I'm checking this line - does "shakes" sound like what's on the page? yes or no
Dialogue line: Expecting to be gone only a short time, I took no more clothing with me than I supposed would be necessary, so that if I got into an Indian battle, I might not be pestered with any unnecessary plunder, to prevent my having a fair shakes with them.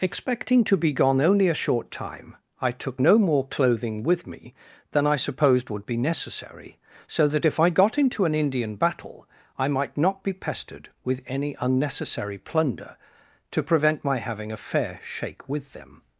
no